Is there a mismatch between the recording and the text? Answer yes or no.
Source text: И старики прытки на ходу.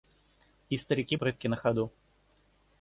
no